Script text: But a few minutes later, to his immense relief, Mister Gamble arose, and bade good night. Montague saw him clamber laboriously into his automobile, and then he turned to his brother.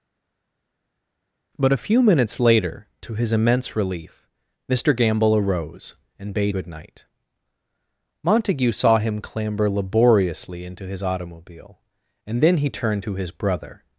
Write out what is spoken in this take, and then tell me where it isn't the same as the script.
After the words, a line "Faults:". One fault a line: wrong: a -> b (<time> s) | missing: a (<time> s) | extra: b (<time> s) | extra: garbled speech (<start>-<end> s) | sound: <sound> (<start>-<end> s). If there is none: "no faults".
But a few minutes later, to his immense relief, Mister Gamble arose, and bade good night. Montague saw him clamber laboriously into his automobile, and then he turned to his brother.
Faults:
no faults